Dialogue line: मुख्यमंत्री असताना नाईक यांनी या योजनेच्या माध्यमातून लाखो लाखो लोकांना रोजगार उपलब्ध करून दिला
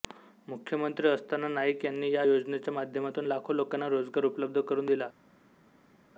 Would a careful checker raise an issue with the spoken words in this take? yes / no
yes